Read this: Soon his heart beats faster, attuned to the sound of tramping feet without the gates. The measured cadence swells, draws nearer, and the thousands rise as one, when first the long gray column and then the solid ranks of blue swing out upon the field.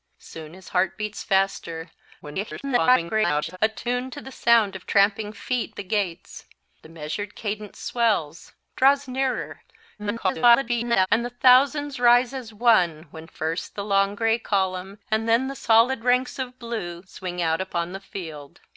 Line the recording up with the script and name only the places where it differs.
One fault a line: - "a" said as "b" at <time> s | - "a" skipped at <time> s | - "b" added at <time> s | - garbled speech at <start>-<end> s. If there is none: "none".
- garbled speech at 2.2-3.6 s
- "without" skipped at 5.7 s
- garbled speech at 10.0-11.1 s